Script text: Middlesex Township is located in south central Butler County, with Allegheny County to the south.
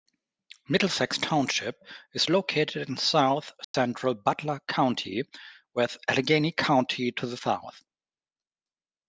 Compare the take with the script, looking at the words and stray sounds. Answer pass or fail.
fail